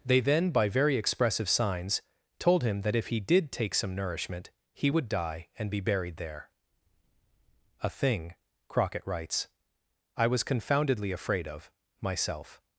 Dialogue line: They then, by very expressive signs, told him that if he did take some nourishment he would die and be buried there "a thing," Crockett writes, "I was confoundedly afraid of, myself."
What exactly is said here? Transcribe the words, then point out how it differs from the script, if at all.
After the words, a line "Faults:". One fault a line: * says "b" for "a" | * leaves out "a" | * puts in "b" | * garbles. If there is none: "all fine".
They then, by very expressive signs, told him that if he did take some nourishment he would die and be buried there "a thing," Crockett writes, "I was confoundedly afraid of, myself."
Faults:
all fine